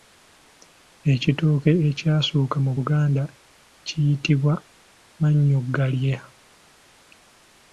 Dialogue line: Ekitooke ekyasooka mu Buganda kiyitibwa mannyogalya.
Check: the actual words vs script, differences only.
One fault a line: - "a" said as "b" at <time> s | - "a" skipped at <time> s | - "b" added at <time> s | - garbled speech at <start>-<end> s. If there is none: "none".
none